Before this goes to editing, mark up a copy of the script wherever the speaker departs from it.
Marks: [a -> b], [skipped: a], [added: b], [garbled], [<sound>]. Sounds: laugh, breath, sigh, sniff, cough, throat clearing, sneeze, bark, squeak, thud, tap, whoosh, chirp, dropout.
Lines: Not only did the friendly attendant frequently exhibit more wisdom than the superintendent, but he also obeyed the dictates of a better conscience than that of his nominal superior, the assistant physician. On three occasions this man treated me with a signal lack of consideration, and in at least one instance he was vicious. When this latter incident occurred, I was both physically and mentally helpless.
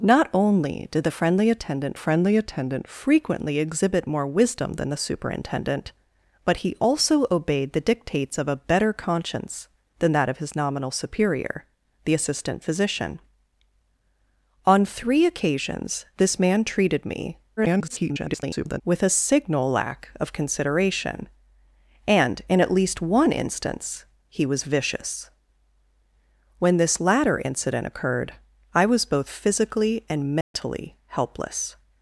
Not only did the friendly attendant [added: friendly attendant] frequently exhibit more wisdom than the superintendent, but he also obeyed the dictates of a better conscience than that of his nominal superior, the assistant physician. On three occasions this man treated me [garbled] with a signal lack of consideration, and in at least one instance he was vicious. When this latter incident occurred, I was both physically and mentally [dropout] helpless.